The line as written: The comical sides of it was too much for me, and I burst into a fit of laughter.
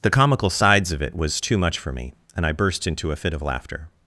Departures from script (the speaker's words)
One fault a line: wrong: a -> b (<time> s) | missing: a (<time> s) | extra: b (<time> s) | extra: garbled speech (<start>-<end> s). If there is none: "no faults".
no faults